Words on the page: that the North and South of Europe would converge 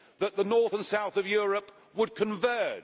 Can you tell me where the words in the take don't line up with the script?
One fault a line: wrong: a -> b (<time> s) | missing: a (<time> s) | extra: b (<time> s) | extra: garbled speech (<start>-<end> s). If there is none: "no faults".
no faults